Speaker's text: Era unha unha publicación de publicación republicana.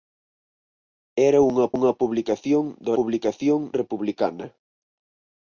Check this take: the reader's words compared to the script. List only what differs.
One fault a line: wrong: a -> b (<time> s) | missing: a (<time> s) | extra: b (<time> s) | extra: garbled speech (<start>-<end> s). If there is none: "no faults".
no faults